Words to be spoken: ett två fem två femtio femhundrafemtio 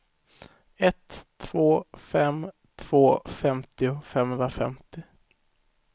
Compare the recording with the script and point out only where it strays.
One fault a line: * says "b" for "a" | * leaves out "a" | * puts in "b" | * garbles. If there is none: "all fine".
all fine